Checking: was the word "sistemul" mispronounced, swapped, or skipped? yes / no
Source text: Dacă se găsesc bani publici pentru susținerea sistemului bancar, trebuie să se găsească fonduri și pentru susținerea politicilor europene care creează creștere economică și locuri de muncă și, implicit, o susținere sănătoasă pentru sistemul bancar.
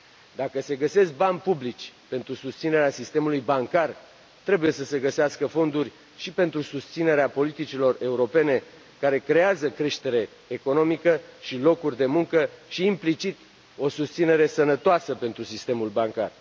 no